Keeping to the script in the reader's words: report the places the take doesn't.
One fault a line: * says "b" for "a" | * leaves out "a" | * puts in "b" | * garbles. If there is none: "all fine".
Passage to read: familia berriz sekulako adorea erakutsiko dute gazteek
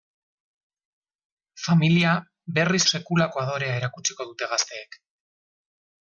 all fine